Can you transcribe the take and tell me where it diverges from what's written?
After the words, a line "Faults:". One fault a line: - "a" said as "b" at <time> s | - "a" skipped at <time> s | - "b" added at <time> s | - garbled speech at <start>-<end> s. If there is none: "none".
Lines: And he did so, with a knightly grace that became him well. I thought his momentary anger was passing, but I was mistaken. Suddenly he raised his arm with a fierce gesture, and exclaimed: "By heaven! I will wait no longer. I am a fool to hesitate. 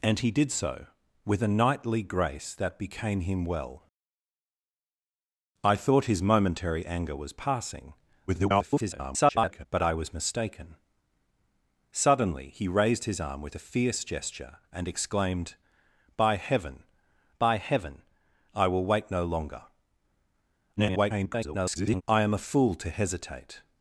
And he did so, with a knightly grace that became him well. I thought his momentary anger was passing, [garbled] but I was mistaken. Suddenly he raised his arm with a fierce gesture, and exclaimed: "By heaven by heaven! I will wait no longer. [garbled] I am a fool to hesitate.
Faults:
- garbled speech at 8.3-9.7 s
- "by heaven" added at 17.4 s
- garbled speech at 20.8-22.0 s